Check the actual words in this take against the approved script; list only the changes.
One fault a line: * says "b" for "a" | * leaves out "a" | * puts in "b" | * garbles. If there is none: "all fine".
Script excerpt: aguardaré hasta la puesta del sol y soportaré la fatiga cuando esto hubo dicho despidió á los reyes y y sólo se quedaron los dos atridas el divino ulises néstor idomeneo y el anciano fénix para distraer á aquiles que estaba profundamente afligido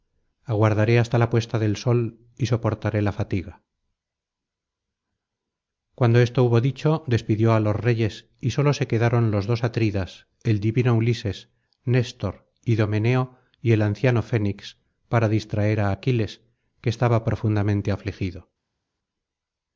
* leaves out "y"